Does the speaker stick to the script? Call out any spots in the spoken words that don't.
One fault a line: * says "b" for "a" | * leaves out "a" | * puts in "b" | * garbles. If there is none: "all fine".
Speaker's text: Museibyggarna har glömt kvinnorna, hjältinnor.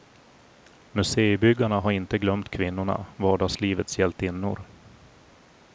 * puts in "inte"
* puts in "vardagslivets"